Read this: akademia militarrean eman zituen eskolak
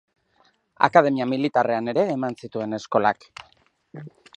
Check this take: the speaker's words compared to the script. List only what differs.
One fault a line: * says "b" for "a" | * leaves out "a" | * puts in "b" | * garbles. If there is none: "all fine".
* puts in "ere"